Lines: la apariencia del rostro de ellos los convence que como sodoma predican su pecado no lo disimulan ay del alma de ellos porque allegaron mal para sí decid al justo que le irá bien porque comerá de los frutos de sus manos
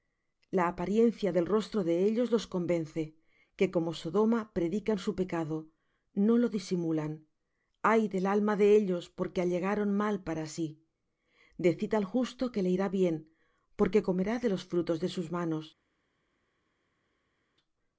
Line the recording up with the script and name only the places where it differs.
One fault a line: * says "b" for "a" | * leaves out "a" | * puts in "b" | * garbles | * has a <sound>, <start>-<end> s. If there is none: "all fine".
all fine